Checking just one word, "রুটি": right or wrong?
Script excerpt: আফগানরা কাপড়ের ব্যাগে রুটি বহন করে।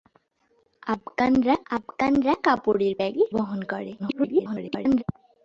wrong